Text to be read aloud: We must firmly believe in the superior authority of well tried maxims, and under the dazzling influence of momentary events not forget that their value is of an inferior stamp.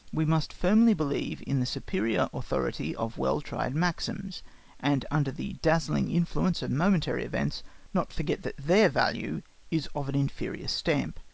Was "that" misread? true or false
false